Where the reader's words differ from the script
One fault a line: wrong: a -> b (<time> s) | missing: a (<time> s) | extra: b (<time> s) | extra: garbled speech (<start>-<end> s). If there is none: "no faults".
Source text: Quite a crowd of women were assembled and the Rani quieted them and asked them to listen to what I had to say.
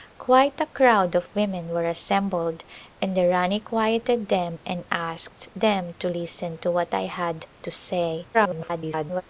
extra: garbled speech (8.3-9.2 s)